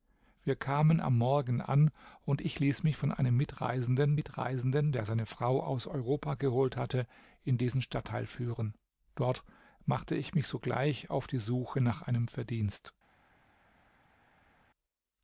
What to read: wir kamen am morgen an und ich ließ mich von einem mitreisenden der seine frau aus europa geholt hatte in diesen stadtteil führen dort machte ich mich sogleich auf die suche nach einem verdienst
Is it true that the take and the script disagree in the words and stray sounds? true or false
true